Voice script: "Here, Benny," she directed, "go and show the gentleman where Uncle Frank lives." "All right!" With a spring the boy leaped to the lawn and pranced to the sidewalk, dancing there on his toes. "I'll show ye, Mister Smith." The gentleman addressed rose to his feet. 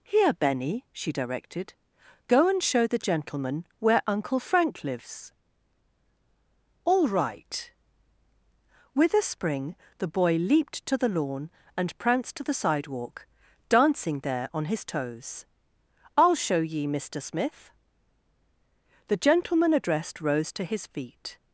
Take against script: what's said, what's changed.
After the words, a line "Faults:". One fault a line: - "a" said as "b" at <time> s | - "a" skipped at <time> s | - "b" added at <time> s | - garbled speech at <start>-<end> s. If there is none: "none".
"Here, Benny," she directed, "go and show the gentleman where Uncle Frank lives." "All right!" With a spring the boy leaped to the lawn and pranced to the sidewalk, dancing there on his toes. "I'll show ye, Mister Smith." The gentleman addressed rose to his feet.
Faults:
none